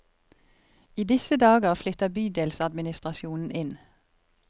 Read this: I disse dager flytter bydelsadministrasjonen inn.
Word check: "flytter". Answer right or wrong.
right